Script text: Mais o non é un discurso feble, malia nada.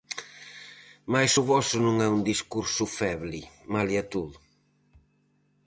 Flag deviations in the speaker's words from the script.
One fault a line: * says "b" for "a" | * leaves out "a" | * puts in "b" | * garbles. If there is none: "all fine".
* puts in "voso"
* says "todo" for "nada"